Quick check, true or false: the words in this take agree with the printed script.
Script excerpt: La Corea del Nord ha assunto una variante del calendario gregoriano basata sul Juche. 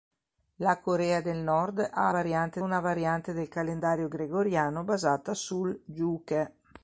false